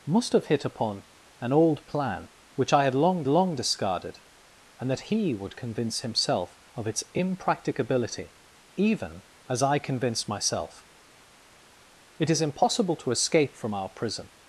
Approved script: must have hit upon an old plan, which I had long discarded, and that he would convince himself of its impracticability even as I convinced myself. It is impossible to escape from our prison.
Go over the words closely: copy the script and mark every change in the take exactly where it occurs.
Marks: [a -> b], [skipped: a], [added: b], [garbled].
must have hit upon an old plan, which I had long [added: long] discarded, and that he would convince himself of its impracticability even as I convinced myself. It is impossible to escape from our prison.